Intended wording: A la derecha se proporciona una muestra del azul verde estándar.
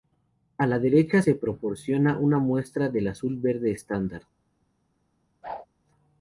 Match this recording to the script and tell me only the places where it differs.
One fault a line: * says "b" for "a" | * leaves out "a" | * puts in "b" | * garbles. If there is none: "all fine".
all fine